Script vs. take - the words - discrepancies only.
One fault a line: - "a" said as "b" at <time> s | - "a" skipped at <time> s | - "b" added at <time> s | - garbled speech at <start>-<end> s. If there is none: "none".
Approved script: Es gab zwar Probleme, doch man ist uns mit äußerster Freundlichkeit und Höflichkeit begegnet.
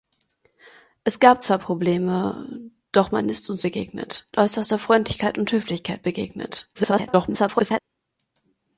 - "mit" said as "begegnet" at 3.6 s
- garbled speech at 6.7-7.8 s